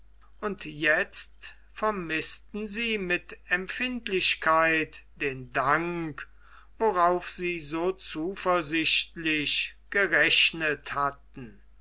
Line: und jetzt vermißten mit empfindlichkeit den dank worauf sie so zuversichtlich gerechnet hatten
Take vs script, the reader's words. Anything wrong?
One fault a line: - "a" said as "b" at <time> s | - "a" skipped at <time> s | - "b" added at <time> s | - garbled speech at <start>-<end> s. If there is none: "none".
- "sie" added at 2.6 s